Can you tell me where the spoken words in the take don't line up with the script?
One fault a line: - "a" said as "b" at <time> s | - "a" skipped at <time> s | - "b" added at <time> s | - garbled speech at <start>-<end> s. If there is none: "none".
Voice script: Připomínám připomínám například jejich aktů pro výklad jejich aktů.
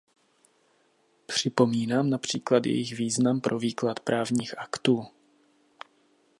- "připomínám" skipped at 2.1 s
- "aktů" said as "význam" at 3.0 s
- "jejich" said as "právních" at 4.0 s